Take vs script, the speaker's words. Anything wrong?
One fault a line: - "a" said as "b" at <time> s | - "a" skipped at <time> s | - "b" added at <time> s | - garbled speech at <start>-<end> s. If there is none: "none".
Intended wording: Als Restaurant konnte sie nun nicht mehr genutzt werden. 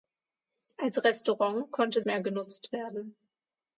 - "sie nun nicht" skipped at 2.0 s